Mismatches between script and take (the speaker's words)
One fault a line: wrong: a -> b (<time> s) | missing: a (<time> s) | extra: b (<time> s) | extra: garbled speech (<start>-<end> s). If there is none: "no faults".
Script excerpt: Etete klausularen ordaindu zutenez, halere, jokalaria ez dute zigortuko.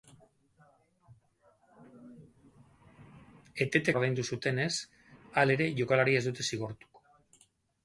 missing: klausularen (4.0 s)